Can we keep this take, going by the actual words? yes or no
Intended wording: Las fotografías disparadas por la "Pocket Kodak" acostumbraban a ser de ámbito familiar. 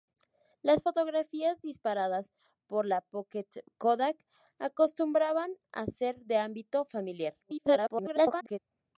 no